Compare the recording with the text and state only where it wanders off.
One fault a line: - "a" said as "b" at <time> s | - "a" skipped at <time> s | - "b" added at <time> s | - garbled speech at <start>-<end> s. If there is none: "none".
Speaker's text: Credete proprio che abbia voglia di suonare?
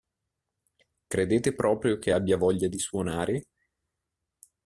none